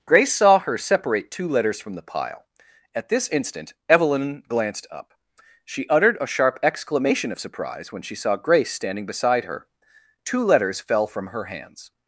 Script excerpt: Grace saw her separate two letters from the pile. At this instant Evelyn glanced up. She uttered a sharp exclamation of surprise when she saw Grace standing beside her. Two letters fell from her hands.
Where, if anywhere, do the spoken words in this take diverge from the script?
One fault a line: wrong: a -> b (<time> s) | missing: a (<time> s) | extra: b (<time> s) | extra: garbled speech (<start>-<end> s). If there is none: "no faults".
no faults